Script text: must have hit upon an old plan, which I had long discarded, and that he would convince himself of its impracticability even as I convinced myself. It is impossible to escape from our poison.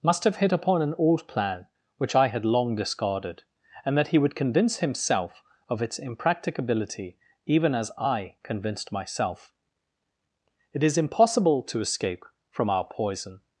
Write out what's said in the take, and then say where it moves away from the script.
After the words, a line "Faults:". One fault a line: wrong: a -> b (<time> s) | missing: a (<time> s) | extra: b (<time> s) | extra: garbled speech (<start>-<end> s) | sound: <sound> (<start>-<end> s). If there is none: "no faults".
must have hit upon an old plan, which I had long discarded, and that he would convince himself of its impracticability even as I convinced myself. It is impossible to escape from our poison.
Faults:
no faults